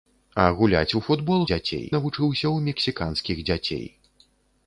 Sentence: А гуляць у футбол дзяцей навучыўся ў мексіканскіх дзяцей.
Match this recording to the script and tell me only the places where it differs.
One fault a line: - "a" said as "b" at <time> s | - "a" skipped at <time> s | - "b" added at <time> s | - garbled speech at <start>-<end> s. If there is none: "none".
none